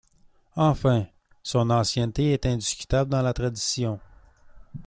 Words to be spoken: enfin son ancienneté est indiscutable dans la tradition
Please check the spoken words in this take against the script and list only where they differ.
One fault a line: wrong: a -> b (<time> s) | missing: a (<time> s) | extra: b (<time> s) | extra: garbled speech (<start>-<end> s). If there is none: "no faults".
no faults